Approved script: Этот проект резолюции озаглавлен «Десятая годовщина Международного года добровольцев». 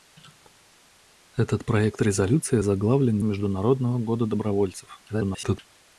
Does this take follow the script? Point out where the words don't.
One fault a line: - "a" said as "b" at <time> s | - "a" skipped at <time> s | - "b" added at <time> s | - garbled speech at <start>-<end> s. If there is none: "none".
- "Десятая годовщина" skipped at 3.2 s
- garbled speech at 5.1-5.6 s